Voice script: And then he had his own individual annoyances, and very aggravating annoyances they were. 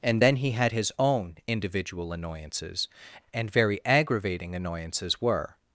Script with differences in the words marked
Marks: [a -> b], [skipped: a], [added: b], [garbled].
And then he had his own individual annoyances, and very aggravating annoyances [skipped: they] were.